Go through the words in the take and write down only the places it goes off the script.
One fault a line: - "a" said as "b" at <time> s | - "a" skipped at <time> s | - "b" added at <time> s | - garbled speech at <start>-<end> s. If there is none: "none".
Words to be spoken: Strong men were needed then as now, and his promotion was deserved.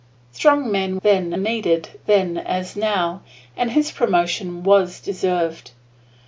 - "were" said as "then" at 1.0 s